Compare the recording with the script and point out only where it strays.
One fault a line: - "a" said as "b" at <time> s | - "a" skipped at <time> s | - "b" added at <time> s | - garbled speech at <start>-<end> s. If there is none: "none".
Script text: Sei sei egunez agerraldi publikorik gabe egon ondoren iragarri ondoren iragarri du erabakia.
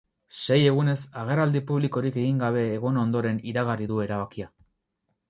- "sei" skipped at 0.6 s
- "egin" added at 2.2 s
- "ondoren iragarri" skipped at 3.9 s